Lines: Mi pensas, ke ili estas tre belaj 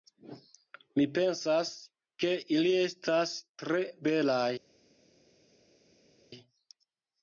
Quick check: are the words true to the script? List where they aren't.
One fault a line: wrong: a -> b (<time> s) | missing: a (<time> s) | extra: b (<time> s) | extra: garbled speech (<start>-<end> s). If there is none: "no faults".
no faults